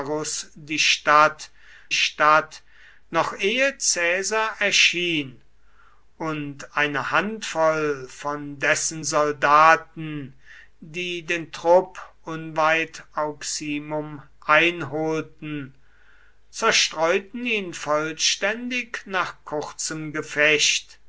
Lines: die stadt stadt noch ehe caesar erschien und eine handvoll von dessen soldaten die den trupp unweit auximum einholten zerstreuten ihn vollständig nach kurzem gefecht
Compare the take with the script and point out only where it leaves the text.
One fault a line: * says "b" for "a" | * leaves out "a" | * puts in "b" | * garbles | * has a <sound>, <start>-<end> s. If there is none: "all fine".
all fine